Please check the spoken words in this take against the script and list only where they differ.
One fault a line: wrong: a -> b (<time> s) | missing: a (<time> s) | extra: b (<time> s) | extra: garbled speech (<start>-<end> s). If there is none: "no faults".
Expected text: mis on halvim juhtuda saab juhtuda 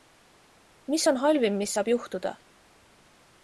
wrong: juhtuda -> mis (1.6 s)